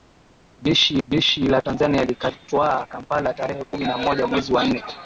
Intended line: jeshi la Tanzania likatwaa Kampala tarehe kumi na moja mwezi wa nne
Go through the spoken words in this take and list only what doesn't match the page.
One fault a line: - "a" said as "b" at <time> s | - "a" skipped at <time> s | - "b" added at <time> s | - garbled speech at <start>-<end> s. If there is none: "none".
- "jeshi" added at 1.0 s